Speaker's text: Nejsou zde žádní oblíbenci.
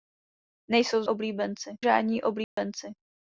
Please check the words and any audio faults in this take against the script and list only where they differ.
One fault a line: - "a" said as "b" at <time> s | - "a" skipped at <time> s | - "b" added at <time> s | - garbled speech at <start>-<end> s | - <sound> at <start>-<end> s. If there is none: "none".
- "zde" said as "oblíbenci" at 1.1 s
- dropout at 2.4-2.6 s